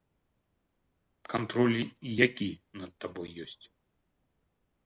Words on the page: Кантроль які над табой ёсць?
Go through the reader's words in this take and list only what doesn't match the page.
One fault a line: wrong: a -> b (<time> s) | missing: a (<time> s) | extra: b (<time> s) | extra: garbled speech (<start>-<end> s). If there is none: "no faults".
no faults